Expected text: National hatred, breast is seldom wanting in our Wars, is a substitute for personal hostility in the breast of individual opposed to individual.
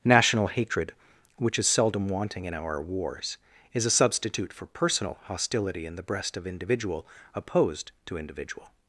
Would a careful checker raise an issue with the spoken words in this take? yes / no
yes